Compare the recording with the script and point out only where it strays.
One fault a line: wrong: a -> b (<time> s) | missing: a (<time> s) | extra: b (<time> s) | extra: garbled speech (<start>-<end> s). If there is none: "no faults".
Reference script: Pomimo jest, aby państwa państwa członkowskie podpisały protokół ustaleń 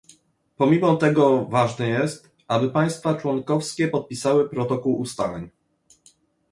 extra: tego ważne (0.9 s)
missing: państwa (3.1 s)